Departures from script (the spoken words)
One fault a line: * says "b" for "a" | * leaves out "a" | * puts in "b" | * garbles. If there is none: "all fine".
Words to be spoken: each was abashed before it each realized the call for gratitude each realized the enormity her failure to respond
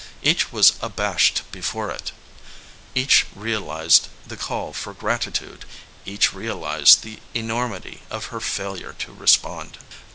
* puts in "of"